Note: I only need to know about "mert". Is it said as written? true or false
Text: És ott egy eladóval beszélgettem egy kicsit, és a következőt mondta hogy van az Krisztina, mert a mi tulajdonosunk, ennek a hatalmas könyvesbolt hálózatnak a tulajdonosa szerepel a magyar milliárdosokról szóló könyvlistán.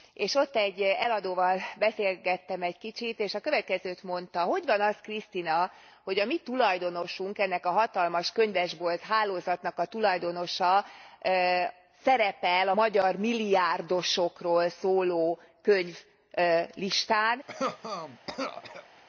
false